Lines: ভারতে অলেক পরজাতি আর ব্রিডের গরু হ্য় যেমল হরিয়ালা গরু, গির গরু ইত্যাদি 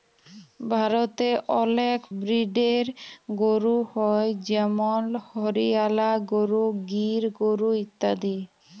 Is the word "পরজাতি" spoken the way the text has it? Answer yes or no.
no